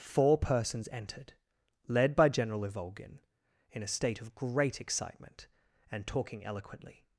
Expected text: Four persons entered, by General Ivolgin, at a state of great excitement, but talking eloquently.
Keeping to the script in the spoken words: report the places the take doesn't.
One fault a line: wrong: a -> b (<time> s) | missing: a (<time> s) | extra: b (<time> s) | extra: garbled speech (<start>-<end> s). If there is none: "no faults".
extra: led (1.9 s)
wrong: at -> in (3.7 s)
wrong: but -> and (5.9 s)